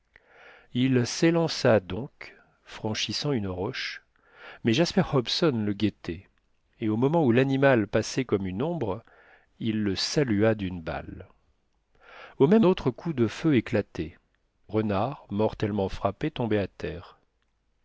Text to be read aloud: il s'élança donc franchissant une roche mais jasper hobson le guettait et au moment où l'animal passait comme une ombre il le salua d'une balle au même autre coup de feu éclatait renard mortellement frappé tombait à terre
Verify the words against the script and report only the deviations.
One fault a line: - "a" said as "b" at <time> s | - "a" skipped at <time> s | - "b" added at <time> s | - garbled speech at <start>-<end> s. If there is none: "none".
none